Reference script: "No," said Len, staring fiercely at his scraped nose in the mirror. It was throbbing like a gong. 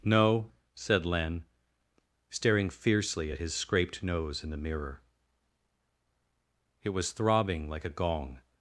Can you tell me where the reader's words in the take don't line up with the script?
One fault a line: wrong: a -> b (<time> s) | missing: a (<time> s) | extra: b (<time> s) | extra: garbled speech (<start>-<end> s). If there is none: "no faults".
no faults